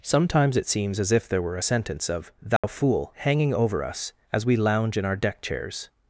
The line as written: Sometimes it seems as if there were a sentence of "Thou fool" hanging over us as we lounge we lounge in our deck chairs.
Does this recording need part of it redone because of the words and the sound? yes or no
yes